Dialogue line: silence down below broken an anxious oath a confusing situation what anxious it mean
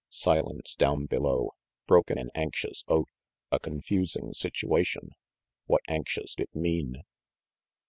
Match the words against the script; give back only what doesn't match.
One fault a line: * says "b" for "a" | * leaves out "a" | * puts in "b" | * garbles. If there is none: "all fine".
all fine